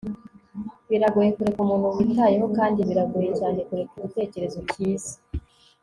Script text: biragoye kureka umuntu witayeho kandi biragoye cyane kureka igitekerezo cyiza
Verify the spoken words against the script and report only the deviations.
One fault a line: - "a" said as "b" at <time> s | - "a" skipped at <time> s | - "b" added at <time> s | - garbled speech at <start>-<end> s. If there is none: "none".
none